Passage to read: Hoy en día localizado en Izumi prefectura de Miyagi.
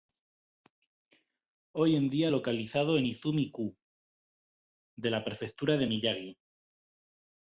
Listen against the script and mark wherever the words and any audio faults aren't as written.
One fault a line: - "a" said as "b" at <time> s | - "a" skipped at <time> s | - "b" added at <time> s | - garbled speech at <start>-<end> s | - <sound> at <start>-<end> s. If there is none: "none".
- "ku de la" added at 3.5 s